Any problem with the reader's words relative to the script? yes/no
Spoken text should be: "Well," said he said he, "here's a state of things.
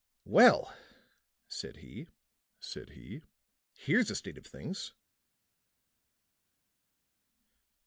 no